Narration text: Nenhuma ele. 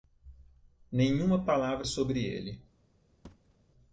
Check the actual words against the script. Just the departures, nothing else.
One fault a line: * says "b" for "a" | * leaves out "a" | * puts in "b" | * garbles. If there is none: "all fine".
* puts in "palavra sobre"